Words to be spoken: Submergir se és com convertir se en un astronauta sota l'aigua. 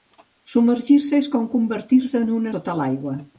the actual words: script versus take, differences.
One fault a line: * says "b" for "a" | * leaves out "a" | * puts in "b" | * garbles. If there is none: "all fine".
* leaves out "astronauta"